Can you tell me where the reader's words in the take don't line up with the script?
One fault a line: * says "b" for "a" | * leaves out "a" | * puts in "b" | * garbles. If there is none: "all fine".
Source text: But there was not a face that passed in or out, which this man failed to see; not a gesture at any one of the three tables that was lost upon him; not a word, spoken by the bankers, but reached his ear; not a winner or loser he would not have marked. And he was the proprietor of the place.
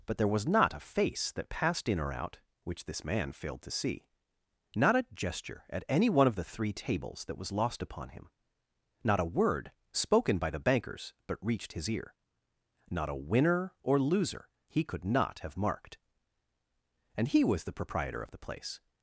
* says "could" for "would"